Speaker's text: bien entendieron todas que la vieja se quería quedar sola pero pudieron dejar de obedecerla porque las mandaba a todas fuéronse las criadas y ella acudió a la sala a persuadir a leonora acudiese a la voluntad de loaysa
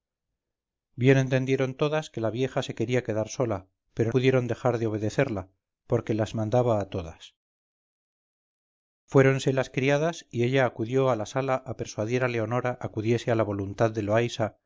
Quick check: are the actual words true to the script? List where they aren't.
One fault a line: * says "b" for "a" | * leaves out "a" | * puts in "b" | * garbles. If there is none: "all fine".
all fine